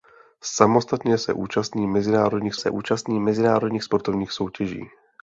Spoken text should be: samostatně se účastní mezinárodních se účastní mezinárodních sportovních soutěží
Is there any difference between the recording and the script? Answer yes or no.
no